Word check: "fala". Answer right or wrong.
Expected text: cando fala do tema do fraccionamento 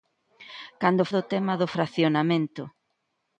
wrong